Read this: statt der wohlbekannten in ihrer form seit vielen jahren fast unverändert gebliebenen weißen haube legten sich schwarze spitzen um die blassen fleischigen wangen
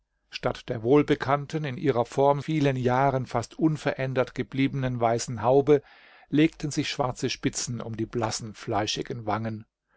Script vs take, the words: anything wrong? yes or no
yes